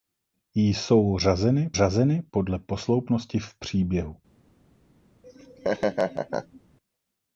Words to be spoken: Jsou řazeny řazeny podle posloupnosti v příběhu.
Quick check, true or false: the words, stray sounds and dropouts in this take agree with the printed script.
false